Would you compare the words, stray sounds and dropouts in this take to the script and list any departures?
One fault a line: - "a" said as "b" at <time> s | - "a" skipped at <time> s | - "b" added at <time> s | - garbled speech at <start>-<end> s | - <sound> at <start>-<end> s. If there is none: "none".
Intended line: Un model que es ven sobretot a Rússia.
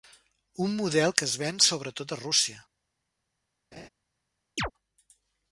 - laugh at 3.7-3.9 s
- chirp at 4.6-4.7 s